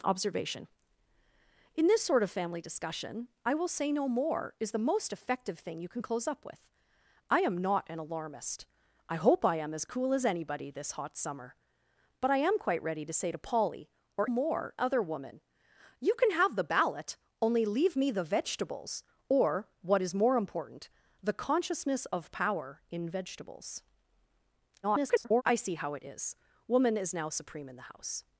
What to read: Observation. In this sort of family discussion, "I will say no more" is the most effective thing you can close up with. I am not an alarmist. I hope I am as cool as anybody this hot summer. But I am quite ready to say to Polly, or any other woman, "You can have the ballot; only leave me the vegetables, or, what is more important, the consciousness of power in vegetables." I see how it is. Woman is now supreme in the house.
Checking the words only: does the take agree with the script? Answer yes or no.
no